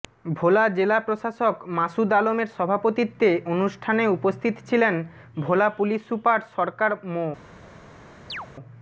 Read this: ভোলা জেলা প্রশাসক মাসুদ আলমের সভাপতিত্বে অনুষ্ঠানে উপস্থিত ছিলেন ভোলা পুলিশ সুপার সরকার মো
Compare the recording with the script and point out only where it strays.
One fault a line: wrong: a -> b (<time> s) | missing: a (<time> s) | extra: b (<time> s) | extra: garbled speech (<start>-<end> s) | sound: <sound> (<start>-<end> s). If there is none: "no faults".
sound: chirp (8.3-8.5 s)